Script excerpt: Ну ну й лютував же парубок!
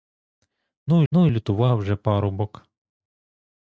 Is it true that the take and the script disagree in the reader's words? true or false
false